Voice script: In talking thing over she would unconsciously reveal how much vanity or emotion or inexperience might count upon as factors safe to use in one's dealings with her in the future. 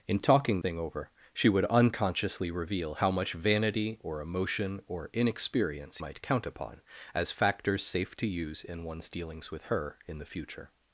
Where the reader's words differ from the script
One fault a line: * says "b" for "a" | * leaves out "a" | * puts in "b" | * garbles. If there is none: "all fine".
all fine